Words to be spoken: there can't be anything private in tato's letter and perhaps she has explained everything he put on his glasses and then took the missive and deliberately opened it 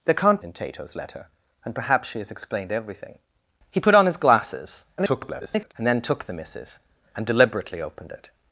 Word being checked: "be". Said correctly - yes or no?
no